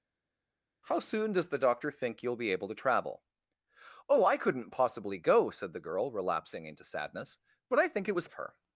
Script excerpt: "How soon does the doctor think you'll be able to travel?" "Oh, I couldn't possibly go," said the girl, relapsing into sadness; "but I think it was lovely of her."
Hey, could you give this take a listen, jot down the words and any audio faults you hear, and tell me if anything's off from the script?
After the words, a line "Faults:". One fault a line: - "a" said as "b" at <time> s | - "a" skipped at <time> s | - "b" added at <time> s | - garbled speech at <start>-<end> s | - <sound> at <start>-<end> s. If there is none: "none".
"How soon does the doctor think you'll be able to travel?" "Oh, I couldn't possibly go," said the girl, relapsing into sadness; "but I think it was of her."
Faults:
- "lovely" skipped at 8.3 s